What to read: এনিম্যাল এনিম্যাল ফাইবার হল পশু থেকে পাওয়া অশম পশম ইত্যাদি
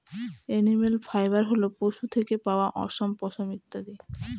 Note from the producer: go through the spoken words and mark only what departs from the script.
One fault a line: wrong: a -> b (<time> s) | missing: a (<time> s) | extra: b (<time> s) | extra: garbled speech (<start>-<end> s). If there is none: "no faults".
missing: এনিম্যাল (0.9 s)